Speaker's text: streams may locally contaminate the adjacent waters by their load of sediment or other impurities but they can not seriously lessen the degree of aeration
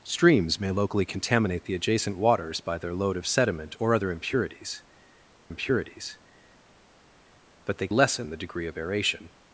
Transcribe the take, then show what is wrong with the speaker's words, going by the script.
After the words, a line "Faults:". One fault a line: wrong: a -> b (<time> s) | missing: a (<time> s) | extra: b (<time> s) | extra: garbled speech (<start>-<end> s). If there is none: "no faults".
streams may locally contaminate the adjacent waters by their load of sediment or other impurities impurities but they lessen the degree of aeration
Faults:
extra: impurities (5.5 s)
missing: can not seriously (7.9 s)